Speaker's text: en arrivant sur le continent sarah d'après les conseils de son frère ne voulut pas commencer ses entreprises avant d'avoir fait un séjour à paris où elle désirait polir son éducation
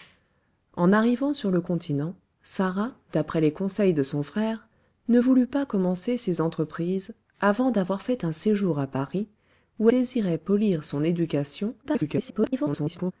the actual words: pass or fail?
fail